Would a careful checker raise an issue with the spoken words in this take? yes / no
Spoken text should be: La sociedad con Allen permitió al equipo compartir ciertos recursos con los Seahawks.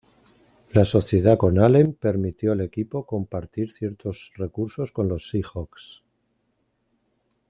no